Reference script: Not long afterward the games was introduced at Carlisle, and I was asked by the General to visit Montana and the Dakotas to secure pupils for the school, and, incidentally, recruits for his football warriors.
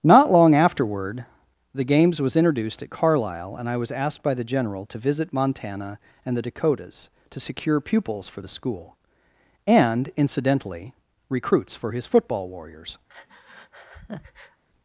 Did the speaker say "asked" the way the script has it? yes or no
yes